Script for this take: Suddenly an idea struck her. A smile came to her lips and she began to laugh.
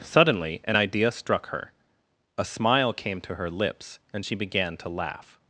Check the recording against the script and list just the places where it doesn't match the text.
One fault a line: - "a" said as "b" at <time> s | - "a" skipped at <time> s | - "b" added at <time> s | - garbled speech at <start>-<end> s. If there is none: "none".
none